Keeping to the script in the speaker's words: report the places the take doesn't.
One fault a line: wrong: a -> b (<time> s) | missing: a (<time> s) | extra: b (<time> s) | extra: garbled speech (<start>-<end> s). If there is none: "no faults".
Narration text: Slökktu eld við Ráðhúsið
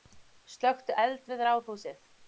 no faults